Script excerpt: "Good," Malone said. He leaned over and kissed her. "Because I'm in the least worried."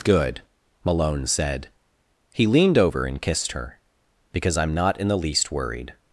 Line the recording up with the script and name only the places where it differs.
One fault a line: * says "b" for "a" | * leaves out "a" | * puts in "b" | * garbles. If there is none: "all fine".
* puts in "not"